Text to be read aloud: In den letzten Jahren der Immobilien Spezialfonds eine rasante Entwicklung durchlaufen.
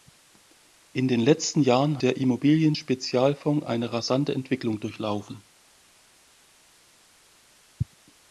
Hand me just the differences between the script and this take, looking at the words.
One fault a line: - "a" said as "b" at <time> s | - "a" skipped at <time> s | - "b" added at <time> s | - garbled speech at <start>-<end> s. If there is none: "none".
none